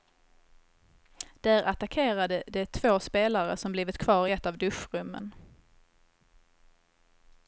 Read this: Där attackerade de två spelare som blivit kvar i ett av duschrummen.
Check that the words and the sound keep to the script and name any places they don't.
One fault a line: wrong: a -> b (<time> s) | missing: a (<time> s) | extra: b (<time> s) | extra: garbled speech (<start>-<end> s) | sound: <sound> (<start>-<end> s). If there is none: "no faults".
no faults